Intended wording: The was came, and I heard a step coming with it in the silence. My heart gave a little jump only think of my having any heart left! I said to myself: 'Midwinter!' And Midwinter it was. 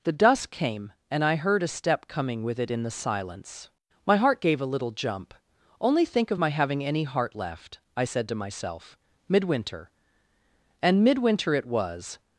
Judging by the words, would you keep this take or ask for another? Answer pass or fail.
fail